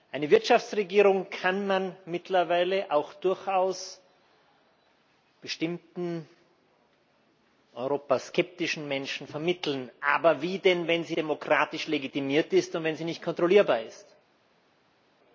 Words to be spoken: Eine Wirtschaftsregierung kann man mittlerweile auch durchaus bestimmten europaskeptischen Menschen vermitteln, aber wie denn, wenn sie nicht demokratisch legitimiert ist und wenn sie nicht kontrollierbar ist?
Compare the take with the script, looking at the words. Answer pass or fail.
fail